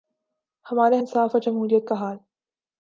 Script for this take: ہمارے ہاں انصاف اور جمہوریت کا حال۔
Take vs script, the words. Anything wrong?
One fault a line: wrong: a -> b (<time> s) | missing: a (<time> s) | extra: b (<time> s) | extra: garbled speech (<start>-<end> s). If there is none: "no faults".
missing: ہاں (1.0 s)